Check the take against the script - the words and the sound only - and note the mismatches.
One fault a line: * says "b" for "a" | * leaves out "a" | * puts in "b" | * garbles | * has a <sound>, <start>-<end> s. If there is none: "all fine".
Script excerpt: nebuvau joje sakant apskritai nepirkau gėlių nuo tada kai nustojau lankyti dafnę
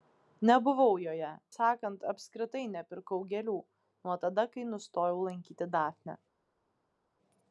all fine